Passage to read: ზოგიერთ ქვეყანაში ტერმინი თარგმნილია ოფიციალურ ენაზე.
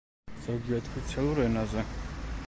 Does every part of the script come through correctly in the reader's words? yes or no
no